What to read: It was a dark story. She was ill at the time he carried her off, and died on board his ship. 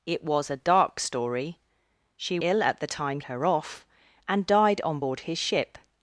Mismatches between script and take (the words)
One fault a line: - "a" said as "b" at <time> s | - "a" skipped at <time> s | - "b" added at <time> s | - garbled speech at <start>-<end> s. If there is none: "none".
- "was" skipped at 2.4 s
- "he carried" skipped at 3.2 s